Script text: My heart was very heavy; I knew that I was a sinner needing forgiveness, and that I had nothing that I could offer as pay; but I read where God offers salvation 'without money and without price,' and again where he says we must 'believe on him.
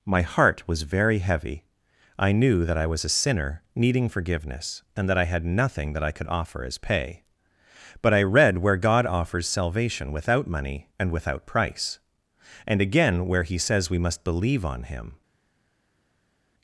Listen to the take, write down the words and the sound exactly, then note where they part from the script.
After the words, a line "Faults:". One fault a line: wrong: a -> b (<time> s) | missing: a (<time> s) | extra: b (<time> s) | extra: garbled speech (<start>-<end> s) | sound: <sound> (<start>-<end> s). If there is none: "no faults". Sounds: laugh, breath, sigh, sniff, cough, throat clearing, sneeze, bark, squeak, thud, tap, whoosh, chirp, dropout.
My heart was very heavy; I knew that I was a sinner needing forgiveness, and that I had nothing that I could offer as pay; but I read where God offers salvation 'without money and without price,' and again where he says we must 'believe on him.
Faults:
no faults